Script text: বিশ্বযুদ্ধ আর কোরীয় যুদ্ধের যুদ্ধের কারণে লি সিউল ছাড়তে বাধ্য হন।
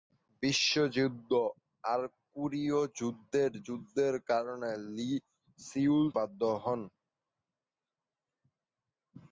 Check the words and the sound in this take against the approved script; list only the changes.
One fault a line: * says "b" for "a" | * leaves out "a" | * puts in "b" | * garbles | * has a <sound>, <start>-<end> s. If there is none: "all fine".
* leaves out "ছাড়তে"